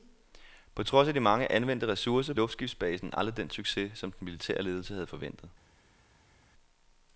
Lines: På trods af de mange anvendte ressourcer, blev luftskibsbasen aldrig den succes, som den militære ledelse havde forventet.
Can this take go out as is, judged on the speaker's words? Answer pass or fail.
fail